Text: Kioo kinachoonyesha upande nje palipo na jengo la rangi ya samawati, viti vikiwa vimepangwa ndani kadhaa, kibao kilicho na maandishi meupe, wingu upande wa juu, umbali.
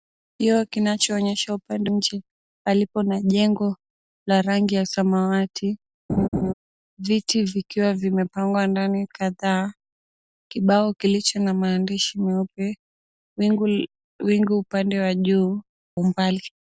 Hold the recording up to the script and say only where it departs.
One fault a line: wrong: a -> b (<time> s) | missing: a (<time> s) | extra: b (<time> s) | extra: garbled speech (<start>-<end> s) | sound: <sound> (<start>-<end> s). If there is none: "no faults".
sound: laugh (6.1-6.5 s)